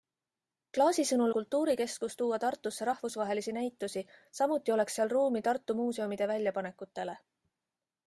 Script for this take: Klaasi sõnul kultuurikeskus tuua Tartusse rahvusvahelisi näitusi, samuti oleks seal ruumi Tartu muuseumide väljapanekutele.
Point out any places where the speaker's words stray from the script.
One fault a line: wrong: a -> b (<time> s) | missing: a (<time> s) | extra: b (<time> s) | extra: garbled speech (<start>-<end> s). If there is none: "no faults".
no faults